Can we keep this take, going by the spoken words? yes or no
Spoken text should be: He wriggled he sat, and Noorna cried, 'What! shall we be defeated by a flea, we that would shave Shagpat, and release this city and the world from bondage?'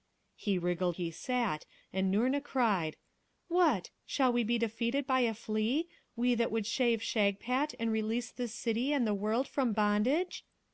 yes